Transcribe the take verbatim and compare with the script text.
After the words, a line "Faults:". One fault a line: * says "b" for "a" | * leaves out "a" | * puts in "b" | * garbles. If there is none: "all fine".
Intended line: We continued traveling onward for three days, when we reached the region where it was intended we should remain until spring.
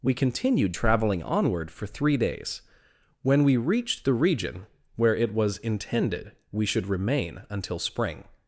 We continued traveling onward for three days, when we reached the region where it was intended we should remain until spring.
Faults:
all fine